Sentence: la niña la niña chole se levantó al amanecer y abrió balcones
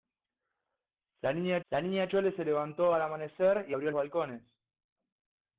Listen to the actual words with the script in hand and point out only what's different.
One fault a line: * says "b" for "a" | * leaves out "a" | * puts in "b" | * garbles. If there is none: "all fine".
all fine